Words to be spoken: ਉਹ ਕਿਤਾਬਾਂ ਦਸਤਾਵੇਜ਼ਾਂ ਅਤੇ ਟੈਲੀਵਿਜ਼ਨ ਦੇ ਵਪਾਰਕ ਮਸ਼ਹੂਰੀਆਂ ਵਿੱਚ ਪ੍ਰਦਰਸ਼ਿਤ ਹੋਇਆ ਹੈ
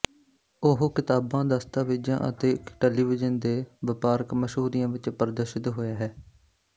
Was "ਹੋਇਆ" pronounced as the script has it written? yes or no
yes